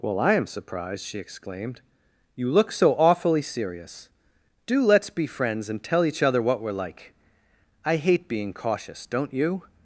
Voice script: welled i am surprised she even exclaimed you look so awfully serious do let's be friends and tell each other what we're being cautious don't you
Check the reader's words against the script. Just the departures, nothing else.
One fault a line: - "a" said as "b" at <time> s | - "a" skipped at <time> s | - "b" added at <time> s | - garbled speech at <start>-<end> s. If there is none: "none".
- "welled" said as "well" at 0.0 s
- "even" skipped at 1.2 s
- "like i hate" added at 6.7 s